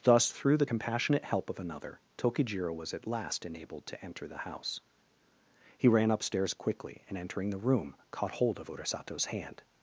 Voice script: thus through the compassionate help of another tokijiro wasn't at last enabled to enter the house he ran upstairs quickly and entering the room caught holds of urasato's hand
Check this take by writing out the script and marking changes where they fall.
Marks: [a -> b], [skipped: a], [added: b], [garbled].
thus through the compassionate help of another tokijiro [wasn't -> was] at last enabled to enter the house he ran upstairs quickly and entering the room caught [holds -> hold] of urasato's hand